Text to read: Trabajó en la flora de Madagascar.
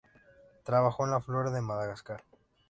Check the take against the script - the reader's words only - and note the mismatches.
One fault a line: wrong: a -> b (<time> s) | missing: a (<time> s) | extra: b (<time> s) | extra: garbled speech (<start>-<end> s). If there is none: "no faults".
no faults